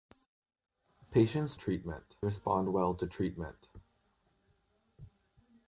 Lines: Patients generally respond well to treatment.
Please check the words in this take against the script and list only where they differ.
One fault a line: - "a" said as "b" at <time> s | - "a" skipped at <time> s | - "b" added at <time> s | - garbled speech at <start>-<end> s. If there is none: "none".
- "generally" said as "treatment" at 1.5 s